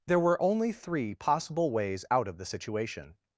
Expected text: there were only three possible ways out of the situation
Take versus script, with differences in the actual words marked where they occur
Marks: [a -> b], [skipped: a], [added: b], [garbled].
there were only three possible ways out of the situation